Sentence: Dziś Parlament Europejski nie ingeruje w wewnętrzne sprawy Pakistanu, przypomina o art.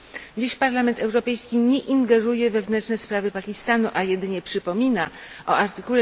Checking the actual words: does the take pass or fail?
fail